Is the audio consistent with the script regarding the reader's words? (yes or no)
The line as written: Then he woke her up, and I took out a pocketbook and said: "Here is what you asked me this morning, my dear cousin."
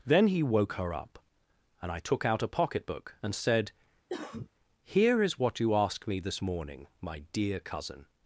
yes